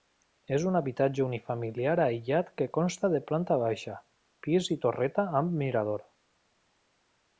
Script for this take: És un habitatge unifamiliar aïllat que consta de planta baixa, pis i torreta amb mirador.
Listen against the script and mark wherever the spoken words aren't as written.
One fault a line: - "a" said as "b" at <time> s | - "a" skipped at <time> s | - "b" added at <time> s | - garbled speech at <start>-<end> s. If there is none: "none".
none